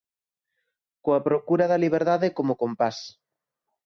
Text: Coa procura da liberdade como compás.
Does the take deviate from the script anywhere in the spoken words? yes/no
no